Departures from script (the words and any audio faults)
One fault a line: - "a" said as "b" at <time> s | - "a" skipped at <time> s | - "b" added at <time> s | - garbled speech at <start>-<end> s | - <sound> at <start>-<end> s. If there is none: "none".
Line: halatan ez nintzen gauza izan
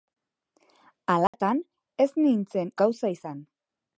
- dropout at 1.3-1.3 s